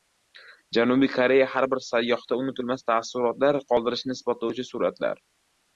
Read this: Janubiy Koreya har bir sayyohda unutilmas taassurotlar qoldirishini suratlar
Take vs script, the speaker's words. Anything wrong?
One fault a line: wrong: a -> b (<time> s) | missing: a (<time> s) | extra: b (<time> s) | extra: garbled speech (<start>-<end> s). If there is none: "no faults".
extra: isbotlovchi (4.2 s)